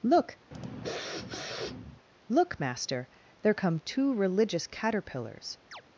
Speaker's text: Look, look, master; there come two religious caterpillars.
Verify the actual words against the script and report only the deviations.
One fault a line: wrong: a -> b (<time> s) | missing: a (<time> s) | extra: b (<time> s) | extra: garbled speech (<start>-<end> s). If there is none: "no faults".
no faults